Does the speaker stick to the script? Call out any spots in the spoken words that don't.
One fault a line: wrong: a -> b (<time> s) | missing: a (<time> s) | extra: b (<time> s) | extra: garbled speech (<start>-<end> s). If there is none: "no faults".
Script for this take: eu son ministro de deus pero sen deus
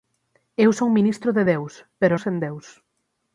no faults